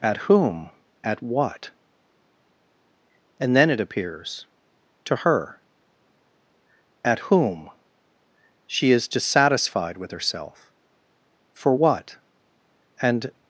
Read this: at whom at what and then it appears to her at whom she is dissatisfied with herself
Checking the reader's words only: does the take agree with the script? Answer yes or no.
no